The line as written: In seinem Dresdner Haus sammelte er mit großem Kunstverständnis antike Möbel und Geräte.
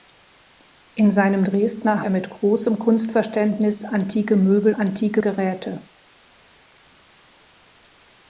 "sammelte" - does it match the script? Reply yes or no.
no